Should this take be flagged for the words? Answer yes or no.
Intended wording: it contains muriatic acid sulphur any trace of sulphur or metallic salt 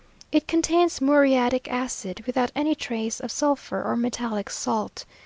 yes